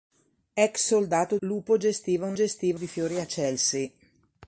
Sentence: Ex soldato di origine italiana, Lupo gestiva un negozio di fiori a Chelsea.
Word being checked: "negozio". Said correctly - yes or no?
no